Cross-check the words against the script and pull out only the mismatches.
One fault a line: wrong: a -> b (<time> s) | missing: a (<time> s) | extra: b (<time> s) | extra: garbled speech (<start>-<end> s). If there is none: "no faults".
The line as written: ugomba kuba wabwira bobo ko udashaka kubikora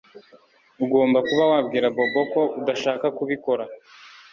no faults